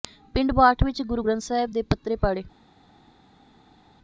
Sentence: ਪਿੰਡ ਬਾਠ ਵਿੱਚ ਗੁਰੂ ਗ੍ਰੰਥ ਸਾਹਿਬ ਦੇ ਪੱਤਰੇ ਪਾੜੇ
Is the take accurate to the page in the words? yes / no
yes